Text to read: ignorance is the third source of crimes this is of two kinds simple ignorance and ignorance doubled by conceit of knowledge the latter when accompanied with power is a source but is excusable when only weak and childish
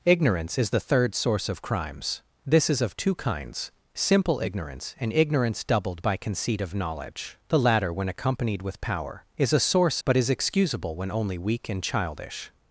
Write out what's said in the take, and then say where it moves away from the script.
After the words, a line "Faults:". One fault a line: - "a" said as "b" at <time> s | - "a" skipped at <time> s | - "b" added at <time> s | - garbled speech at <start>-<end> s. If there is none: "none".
ignorance is the third source of crimes this is of two kinds simple ignorance and ignorance doubled by conceit of knowledge the latter when accompanied with power is a source but is excusable when only weak and childish
Faults:
none